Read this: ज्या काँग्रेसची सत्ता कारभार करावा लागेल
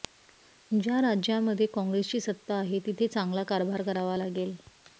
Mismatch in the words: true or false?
true